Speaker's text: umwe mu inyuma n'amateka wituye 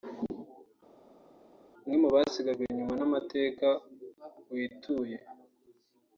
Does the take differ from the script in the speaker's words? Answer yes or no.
yes